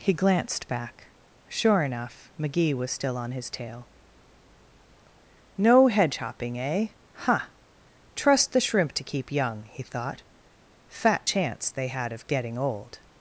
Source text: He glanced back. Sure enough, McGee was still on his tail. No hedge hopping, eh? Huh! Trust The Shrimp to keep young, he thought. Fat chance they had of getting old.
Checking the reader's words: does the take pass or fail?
pass